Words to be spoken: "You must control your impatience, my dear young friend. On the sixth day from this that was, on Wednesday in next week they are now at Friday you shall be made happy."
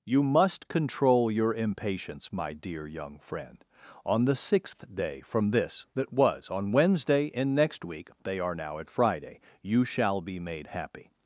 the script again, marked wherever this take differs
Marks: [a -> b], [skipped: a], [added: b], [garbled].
"You must control your impatience, my dear young friend. On the sixth day from this that was, on Wednesday in next week they are now at Friday you shall be made happy."